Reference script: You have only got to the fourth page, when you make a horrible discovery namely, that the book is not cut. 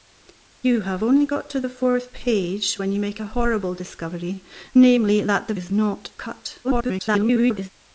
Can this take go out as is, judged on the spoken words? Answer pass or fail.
fail